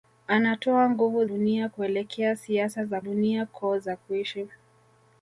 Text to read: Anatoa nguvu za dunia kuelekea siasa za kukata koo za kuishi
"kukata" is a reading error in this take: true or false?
true